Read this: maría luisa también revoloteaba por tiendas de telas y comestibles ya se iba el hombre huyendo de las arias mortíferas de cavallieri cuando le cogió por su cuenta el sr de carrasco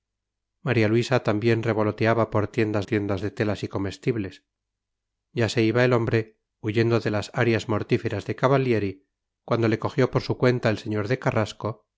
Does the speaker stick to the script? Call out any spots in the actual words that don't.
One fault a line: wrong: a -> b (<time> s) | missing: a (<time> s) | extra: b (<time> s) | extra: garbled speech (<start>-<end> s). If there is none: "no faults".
extra: tiendas (2.8 s)